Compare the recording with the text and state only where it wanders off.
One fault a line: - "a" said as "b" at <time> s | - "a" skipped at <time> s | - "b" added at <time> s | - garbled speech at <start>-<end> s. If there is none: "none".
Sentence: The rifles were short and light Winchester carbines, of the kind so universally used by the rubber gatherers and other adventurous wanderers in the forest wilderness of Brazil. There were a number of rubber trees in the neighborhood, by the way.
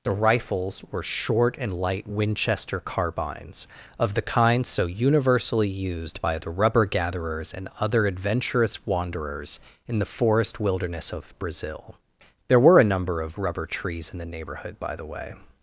none